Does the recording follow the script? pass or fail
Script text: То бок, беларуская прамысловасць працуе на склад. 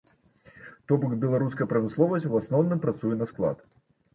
fail